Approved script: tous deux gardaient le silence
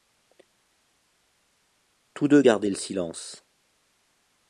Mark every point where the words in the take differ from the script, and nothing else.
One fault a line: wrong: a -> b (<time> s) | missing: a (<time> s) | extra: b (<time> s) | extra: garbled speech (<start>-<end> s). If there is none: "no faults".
no faults